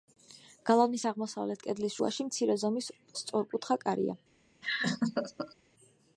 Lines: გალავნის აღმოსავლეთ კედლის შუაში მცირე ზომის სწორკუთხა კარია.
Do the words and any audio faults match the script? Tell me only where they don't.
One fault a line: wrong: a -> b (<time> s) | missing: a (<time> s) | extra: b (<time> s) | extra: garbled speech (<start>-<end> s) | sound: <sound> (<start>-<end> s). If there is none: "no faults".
sound: laugh (4.6-5.6 s)